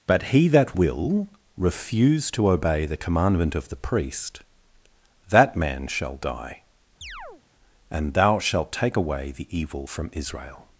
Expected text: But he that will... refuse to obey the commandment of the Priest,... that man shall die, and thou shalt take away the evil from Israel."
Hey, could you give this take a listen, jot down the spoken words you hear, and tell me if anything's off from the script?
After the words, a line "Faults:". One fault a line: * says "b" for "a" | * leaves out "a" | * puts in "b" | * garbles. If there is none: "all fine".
But he that will... refuse to obey the commandment of the Priest,... that man shall die, and thou shalt take away the evil from Israel."
Faults:
all fine